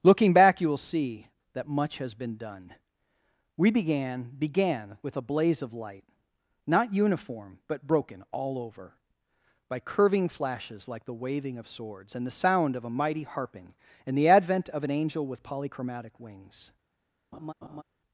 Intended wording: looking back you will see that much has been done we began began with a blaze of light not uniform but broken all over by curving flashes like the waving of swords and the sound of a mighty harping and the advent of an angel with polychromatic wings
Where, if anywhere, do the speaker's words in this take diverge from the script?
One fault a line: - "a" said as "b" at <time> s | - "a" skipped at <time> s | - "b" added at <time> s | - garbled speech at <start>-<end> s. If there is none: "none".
none